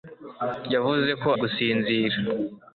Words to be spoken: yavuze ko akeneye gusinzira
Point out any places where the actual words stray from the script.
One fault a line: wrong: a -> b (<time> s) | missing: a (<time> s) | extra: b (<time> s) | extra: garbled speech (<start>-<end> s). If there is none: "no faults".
missing: akeneye (1.3 s)